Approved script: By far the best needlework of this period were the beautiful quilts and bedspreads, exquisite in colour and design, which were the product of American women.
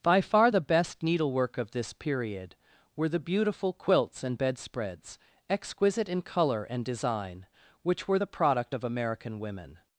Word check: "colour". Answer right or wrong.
right